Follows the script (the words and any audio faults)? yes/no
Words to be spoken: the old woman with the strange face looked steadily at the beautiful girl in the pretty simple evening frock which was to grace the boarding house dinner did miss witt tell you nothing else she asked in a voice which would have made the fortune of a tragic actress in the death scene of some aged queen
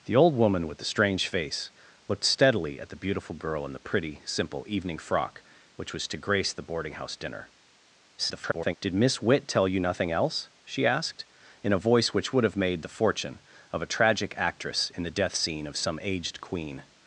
no